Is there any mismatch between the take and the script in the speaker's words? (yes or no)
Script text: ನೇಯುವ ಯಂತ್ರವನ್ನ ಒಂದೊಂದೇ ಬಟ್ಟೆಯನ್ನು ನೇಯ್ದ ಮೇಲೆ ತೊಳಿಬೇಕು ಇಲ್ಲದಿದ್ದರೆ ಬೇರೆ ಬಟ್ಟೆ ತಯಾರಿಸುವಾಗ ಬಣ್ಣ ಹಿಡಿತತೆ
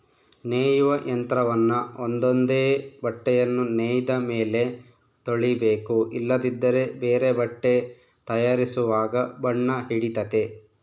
no